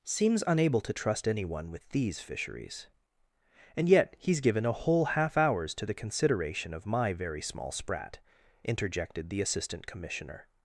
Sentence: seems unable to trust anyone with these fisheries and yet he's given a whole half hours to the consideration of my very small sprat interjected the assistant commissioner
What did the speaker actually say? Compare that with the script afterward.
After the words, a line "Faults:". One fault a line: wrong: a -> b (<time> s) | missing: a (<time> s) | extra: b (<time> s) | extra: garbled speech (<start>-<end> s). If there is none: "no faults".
seems unable to trust anyone with these fisheries and yet he's given a whole half hours to the consideration of my very small sprat interjected the assistant commissioner
Faults:
no faults